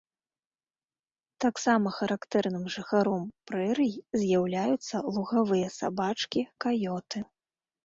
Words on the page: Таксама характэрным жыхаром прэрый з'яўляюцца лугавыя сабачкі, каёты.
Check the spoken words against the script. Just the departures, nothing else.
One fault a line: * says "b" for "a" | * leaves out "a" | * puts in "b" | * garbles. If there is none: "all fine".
all fine